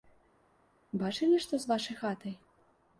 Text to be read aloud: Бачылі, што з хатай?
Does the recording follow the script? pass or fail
fail